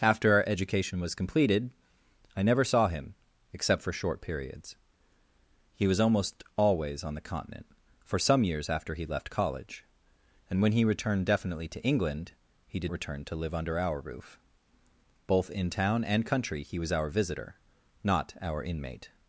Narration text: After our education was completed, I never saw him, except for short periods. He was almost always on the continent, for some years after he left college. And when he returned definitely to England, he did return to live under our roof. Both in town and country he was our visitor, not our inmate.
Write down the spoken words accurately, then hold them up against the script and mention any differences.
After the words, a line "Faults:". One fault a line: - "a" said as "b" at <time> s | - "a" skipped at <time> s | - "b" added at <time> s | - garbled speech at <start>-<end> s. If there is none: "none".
After our education was completed, I never saw him, except for short periods. He was almost always on the continent, for some years after he left college. And when he returned definitely to England, he did return to live under our roof. Both in town and country he was our visitor, not our inmate.
Faults:
none